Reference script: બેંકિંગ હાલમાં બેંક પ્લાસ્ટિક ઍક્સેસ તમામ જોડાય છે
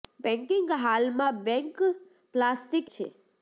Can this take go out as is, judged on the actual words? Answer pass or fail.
fail